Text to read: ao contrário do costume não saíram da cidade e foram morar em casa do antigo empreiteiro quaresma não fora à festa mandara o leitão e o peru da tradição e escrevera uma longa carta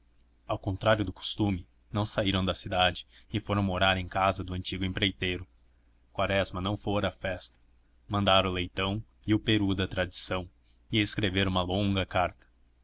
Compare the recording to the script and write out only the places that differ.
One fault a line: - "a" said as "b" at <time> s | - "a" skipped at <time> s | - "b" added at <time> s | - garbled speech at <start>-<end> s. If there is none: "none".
none